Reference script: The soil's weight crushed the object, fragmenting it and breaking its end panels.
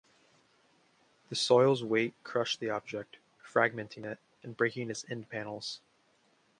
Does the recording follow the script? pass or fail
pass